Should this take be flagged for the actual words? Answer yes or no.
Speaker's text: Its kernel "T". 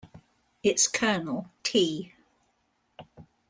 no